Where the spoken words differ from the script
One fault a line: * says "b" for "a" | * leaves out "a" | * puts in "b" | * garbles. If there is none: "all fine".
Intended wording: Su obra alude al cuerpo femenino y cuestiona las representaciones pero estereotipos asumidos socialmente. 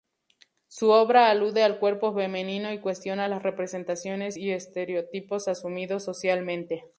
* says "y" for "pero"